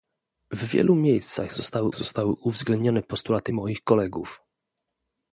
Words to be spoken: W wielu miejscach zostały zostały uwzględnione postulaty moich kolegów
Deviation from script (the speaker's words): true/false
false